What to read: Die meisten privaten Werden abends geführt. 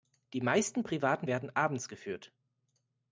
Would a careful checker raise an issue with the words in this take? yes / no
no